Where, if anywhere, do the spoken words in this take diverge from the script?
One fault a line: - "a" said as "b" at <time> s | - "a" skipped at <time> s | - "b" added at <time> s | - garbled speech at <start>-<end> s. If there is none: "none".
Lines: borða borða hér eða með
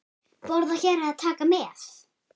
- "borða" skipped at 0.8 s
- "taka" added at 1.2 s